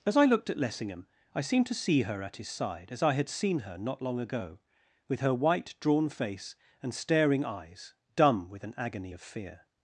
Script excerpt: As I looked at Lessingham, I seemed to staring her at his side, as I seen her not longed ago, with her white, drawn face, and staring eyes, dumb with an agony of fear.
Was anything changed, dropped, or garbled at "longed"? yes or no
yes